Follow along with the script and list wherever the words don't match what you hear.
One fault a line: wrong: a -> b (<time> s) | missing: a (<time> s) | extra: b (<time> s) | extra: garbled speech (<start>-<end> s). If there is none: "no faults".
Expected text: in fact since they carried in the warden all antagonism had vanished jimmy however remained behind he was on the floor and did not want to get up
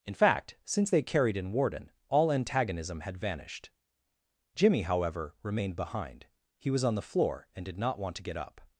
missing: the (1.5 s)